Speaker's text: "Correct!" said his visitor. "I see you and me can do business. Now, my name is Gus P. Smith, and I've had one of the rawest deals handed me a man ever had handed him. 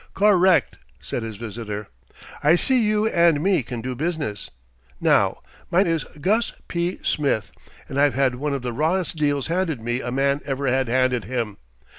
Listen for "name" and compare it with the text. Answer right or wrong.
wrong